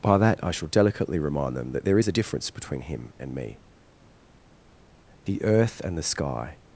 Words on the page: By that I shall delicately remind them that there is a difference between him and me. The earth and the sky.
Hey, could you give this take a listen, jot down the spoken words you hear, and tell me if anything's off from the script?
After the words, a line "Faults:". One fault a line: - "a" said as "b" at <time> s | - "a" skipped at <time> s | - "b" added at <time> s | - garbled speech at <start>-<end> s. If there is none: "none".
By that I shall delicately remind them that there is a difference between him and me. The earth and the sky.
Faults:
none